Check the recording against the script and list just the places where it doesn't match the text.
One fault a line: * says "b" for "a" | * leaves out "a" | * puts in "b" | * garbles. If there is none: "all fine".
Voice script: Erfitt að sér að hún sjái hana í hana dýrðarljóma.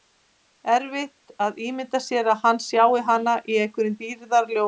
* puts in "ímynda"
* says "hann" for "hún"
* says "einhverjum" for "hana"